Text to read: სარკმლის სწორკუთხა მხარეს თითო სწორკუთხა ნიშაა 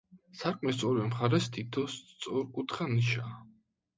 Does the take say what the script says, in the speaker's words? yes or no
no